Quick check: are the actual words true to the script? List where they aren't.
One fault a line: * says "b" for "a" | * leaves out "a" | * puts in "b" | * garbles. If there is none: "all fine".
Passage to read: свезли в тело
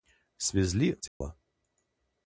all fine